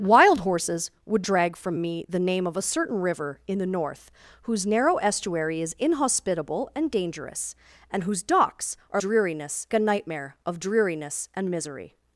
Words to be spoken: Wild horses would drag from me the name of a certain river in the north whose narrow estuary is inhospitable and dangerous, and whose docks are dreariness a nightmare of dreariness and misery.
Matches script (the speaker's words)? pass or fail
pass